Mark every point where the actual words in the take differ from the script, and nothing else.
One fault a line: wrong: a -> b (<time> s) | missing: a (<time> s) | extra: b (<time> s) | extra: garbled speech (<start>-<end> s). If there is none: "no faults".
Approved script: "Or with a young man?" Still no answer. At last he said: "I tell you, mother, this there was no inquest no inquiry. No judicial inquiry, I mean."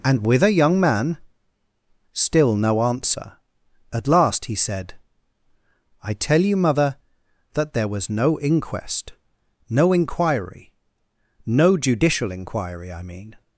wrong: Or -> And (0.0 s)
wrong: this -> that (7.5 s)